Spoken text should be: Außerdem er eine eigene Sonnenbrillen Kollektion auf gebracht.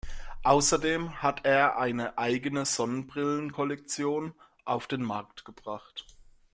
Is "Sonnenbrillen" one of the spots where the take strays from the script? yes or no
no